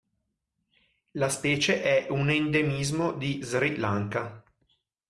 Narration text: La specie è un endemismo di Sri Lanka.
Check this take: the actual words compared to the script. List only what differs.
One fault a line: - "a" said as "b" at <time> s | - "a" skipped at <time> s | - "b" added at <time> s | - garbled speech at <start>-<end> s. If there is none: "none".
none